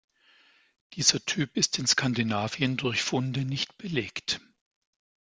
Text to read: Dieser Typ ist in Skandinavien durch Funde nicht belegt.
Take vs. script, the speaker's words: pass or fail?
pass